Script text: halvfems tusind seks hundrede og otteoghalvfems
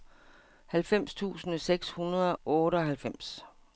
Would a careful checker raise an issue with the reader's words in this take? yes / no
yes